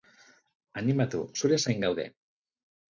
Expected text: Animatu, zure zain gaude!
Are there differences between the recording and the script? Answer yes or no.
no